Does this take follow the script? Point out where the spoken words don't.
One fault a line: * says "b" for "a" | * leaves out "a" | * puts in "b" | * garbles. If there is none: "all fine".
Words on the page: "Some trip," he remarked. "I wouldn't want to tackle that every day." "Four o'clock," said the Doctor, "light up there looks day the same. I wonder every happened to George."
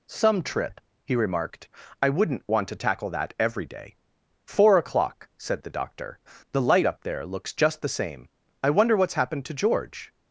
* puts in "the"
* says "just" for "day"
* says "what's" for "every"